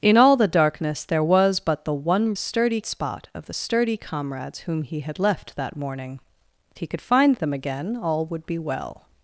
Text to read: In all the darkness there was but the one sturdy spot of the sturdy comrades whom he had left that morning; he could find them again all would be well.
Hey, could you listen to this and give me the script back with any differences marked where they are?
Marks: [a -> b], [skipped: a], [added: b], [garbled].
In all the darkness there was but the one sturdy spot of the sturdy comrades whom he had left that morning; he could find them again all would be well.